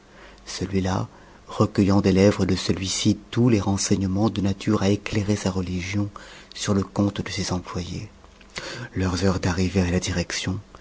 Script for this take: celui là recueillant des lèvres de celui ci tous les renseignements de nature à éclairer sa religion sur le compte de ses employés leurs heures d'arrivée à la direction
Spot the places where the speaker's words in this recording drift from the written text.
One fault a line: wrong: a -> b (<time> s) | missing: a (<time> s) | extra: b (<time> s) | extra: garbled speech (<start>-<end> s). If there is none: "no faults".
no faults